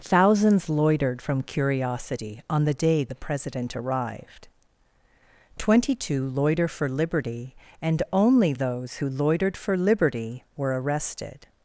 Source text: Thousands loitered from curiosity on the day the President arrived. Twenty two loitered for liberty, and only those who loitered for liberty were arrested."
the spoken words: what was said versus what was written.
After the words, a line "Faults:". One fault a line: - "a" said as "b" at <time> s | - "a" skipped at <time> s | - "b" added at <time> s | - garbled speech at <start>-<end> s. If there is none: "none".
Thousands loitered from curiosity on the day the President arrived. Twenty two loiter for liberty, and only those who loitered for liberty were arrested."
Faults:
- "loitered" said as "loiter" at 6.3 s